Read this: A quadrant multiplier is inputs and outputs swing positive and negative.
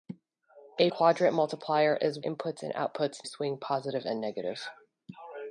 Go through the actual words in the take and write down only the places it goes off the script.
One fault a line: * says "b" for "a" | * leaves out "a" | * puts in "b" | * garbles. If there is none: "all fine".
all fine